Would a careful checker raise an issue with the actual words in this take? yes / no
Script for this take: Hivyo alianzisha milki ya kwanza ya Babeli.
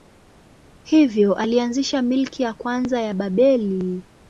no